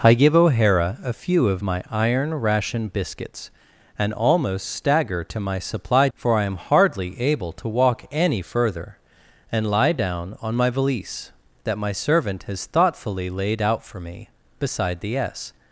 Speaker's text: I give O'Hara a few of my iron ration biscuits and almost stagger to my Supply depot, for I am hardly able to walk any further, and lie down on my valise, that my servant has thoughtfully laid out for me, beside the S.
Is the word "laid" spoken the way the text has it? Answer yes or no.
yes